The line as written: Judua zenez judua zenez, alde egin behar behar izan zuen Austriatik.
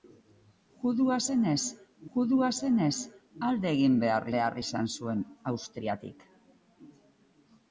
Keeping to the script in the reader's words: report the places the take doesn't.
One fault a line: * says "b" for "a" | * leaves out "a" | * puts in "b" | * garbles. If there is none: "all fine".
all fine